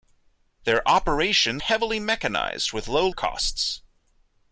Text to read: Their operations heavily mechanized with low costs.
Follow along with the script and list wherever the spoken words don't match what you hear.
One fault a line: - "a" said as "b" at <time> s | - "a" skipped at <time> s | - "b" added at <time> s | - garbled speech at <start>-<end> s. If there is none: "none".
none